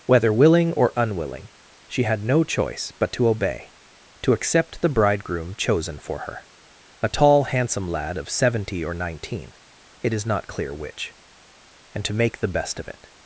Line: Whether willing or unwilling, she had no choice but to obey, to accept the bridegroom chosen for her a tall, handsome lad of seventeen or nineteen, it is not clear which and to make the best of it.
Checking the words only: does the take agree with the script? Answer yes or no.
no